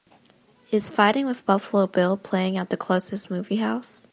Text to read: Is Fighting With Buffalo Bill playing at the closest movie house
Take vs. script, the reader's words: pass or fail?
pass